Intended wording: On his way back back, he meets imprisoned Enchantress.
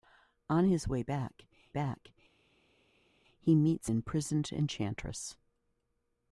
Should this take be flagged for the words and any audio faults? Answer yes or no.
no